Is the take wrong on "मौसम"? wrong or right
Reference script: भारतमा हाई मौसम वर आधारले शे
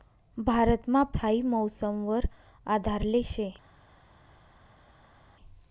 right